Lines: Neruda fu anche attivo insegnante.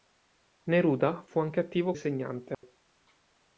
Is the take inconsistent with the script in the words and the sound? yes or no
yes